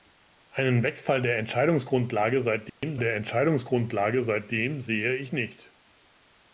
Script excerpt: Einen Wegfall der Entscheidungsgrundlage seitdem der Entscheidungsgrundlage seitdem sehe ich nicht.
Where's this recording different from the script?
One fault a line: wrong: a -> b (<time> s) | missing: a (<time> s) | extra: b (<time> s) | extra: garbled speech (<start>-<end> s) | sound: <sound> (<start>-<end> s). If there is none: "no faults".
sound: dropout (2.7-2.8 s)